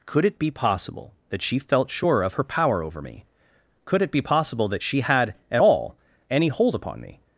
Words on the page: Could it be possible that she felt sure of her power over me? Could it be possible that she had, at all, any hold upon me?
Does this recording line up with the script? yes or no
yes